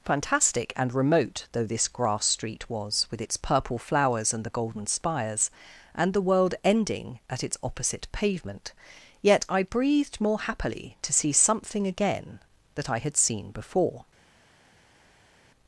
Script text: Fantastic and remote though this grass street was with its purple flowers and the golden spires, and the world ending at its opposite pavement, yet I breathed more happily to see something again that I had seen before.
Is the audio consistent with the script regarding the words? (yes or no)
yes